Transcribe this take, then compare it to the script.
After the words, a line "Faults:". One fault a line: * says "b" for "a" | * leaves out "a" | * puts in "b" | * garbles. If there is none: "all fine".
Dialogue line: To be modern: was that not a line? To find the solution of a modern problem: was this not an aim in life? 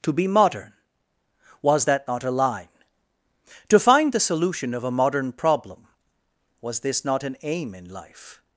To be modern: was that not a line? To find the solution of a modern problem: was this not an aim in life?
Faults:
all fine